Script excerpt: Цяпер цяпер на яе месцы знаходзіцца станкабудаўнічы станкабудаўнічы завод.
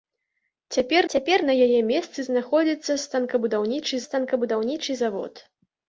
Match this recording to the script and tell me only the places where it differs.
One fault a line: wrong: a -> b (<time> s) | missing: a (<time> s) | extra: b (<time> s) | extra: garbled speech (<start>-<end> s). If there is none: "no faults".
no faults